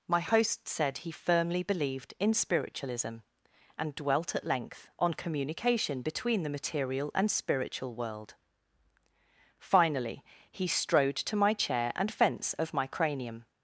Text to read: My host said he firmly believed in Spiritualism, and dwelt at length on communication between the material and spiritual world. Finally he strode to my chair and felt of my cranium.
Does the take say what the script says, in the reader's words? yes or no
no